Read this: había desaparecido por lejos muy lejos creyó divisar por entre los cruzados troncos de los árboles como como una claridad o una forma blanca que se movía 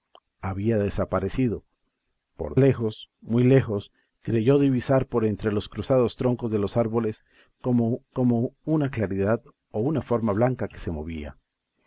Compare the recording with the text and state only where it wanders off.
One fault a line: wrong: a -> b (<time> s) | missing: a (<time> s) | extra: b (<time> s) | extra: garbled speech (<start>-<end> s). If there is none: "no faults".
no faults